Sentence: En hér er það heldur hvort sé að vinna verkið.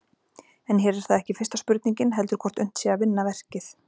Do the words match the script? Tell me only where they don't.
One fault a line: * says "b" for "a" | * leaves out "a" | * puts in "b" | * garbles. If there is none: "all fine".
* puts in "ekki fyrsta spurningin"
* puts in "unnt"